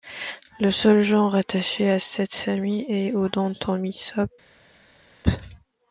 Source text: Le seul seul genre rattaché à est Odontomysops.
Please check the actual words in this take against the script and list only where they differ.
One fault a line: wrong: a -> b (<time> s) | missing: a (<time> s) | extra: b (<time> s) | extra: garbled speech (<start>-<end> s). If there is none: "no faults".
missing: seul (1.0 s)
extra: cette famille (2.0 s)